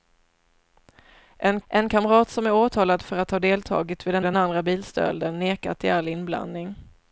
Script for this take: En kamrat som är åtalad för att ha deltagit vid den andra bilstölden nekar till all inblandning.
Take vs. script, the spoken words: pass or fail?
fail